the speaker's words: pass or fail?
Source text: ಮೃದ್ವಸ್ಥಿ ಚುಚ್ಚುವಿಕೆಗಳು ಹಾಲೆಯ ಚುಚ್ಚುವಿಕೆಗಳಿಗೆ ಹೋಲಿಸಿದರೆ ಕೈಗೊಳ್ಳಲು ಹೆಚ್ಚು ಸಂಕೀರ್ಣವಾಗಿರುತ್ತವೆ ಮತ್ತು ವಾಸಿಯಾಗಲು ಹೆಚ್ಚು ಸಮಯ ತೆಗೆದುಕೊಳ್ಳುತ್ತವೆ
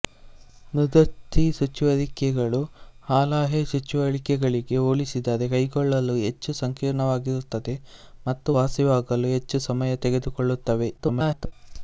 fail